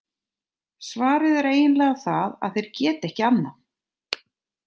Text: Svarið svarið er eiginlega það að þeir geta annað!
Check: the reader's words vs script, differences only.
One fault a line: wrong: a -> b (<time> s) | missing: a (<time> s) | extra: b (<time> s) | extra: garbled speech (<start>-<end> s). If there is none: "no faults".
missing: svarið (1.4 s)
extra: ekki (3.1 s)